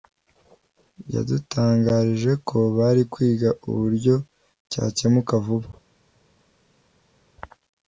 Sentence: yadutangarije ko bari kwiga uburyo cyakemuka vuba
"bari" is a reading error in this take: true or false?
false